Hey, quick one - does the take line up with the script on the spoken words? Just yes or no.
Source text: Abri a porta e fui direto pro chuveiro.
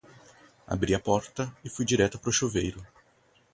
yes